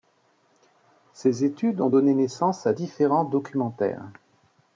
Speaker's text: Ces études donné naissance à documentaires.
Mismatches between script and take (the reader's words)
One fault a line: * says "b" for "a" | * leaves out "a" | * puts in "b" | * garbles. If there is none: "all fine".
* puts in "ont"
* puts in "différents"